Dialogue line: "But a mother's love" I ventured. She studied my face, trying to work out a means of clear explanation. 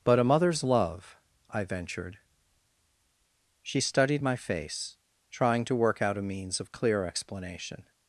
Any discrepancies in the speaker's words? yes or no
no